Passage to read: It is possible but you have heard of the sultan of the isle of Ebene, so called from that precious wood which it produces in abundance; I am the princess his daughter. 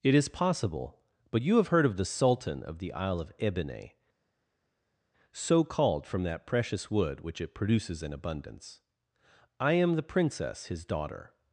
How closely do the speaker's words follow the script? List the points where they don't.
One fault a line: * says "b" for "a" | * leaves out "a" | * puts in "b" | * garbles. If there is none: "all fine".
all fine